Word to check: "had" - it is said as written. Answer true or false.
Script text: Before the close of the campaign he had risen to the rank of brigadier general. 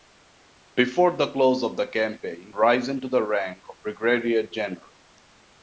false